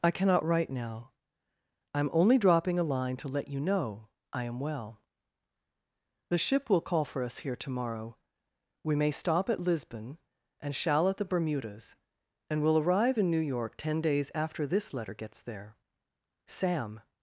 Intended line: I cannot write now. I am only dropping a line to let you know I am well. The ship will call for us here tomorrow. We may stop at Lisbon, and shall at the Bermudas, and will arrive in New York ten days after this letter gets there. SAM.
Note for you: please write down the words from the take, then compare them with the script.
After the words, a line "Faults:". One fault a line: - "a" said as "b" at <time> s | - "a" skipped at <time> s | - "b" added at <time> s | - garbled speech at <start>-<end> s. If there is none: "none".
I cannot write now. I am only dropping a line to let you know I am well. The ship will call for us here tomorrow. We may stop at Lisbon, and shall at the Bermudas, and will arrive in New York ten days after this letter gets there. SAM.
Faults:
none